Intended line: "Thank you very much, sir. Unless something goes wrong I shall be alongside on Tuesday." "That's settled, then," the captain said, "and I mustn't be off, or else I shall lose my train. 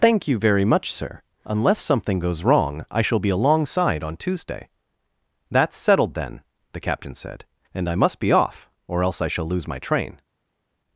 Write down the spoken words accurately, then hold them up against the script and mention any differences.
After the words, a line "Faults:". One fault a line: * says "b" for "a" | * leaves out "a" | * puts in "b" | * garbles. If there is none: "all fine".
"Thank you very much, sir. Unless something goes wrong I shall be alongside on Tuesday." "That's settled, then," the captain said, "and I must be off, or else I shall lose my train.
Faults:
* says "must" for "mustn't"